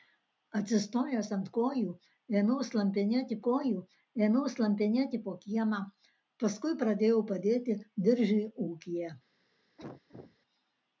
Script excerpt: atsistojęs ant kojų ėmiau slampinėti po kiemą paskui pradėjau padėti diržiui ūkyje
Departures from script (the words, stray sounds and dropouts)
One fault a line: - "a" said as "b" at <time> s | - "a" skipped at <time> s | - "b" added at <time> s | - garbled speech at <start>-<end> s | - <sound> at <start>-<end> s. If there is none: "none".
- "kojų ėmiau slampinėti" added at 3.5 s
- cough at 9.8-10.4 s